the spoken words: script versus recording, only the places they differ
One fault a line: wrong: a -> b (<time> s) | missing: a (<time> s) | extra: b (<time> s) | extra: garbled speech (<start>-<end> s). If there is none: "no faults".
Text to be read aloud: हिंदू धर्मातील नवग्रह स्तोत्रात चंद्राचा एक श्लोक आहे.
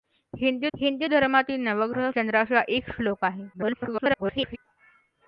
extra: हिंदू (0.7 s)
missing: स्तोत्रात (2.1 s)
extra: garbled speech (3.5-4.6 s)